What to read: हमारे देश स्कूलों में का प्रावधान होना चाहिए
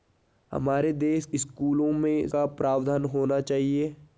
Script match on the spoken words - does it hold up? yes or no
yes